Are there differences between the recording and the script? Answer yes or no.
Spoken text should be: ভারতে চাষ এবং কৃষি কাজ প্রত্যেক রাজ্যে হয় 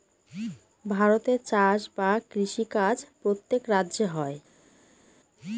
yes